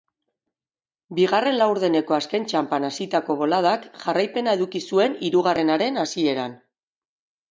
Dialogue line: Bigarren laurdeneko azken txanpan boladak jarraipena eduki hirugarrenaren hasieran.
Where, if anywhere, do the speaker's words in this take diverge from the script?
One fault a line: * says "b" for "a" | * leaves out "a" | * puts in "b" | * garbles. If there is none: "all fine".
* puts in "hasitako"
* puts in "zuen"